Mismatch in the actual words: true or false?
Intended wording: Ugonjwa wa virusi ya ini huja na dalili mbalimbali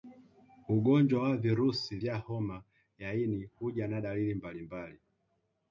true